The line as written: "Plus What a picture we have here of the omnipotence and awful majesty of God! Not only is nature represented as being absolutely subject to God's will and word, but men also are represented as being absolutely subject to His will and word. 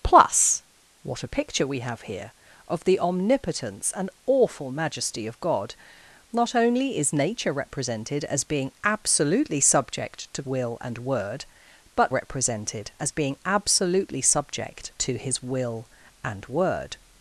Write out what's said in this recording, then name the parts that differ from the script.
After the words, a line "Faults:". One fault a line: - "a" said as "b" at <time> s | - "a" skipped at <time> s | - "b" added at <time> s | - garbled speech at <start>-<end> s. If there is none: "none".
"Plus What a picture we have here of the omnipotence and awful majesty of God! Not only is nature represented as being absolutely subject to Will and word, but represented as being absolutely subject to His will and word.
Faults:
- "God's" skipped at 10.4 s
- "men also are" skipped at 12.1 s